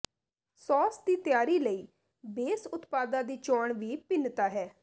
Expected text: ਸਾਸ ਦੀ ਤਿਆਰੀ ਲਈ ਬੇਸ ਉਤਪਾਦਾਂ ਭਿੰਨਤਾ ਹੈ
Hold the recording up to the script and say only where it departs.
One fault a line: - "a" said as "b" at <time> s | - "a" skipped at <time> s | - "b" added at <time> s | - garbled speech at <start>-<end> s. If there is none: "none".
- "ਦੀ ਚੋਣ ਵੀ" added at 3.2 s